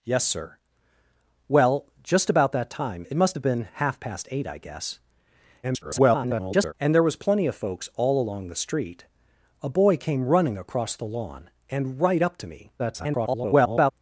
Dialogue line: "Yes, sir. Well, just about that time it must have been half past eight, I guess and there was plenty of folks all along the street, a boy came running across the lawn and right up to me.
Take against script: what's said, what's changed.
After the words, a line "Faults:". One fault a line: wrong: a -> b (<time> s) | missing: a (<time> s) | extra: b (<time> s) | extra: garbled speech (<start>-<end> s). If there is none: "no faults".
"Yes, sir. Well, just about that time it must have been half past eight, I guess [garbled] and there was plenty of folks all along the street, a boy came running across the lawn and right up to me. [garbled]
Faults:
extra: garbled speech (5.6-6.7 s)
extra: garbled speech (12.8-13.9 s)